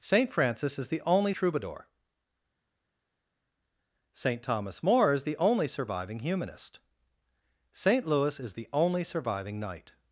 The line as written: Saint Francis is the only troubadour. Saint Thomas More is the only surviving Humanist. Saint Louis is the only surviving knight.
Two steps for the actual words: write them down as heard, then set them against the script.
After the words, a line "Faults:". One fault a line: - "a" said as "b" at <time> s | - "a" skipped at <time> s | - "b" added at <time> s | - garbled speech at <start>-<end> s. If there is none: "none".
Saint Francis is the only troubadour. Saint Thomas More is the only surviving Humanist. Saint Louis is the only surviving knight.
Faults:
none